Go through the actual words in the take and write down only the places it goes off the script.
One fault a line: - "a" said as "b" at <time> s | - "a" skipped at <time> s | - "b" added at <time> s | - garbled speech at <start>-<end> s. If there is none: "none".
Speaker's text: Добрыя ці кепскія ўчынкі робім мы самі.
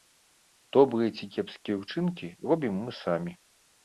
none